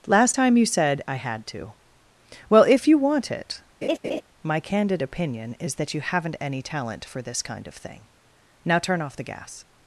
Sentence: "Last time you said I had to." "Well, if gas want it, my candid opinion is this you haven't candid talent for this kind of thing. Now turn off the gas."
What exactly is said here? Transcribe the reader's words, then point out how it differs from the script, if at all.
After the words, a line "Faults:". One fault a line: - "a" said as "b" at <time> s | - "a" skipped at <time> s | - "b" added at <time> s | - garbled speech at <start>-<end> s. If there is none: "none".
"Last time you said I had to." "Well, if you want it, my candid opinion is that you haven't any talent for this kind of thing. Now turn off the gas."
Faults:
- "gas" said as "you" at 2.9 s
- "this" said as "that" at 5.8 s
- "candid" said as "any" at 6.4 s